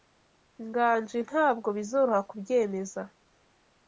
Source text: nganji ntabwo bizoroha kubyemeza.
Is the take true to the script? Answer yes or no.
yes